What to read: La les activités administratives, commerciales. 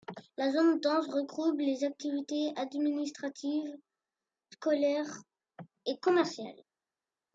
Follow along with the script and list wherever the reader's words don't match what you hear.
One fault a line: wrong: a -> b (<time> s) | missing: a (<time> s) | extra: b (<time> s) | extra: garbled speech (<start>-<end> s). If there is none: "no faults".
extra: zone dense regroupe (0.5 s)
extra: scolaires et (4.5 s)